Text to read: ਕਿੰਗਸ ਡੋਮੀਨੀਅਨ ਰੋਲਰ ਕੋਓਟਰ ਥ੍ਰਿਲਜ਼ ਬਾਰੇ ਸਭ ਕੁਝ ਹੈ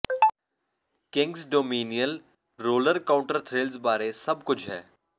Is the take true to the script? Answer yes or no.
yes